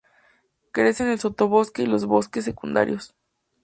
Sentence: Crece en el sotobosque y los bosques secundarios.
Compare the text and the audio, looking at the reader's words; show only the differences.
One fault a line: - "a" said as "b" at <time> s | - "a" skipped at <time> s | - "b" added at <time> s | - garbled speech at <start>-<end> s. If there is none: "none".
none